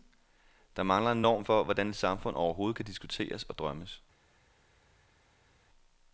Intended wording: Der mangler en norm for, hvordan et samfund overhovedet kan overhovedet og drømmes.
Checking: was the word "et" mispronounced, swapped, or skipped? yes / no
no